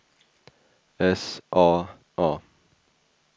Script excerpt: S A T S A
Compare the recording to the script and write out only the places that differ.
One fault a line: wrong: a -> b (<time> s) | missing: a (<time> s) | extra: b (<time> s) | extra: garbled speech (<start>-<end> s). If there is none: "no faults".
missing: T S (1.9 s)